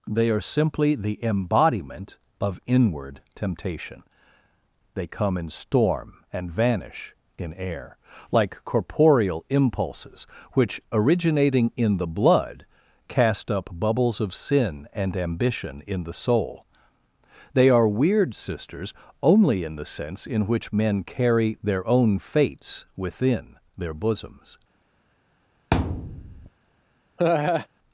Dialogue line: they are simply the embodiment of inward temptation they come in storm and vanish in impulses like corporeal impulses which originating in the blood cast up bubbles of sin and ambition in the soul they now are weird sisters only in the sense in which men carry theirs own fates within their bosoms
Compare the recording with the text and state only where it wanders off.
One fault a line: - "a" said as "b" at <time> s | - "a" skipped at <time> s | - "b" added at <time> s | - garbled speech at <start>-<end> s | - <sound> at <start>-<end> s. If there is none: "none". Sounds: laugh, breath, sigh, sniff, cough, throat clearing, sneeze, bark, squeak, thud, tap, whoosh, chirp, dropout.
- "impulses" said as "air" at 7.5 s
- "now" skipped at 17.7 s
- "theirs" said as "their" at 21.6 s
- thud at 25.7-26.5 s
- laugh at 27.2-27.7 s